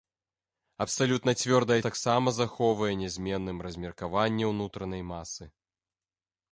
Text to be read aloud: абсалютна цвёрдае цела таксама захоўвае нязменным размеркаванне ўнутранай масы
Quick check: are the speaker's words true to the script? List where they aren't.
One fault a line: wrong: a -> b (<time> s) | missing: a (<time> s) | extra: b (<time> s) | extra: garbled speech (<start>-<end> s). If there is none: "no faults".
missing: цела (1.8 s)